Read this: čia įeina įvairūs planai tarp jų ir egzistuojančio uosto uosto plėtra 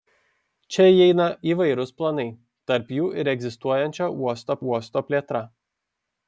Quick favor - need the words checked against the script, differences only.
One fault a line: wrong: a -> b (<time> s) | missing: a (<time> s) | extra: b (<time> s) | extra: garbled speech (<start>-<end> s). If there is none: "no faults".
no faults